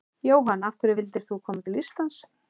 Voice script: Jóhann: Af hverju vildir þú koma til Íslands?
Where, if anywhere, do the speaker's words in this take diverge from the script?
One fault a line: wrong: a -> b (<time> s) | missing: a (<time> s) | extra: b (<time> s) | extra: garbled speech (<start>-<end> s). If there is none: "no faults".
no faults